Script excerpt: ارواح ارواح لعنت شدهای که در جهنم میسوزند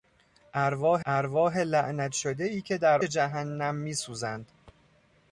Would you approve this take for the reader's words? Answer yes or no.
yes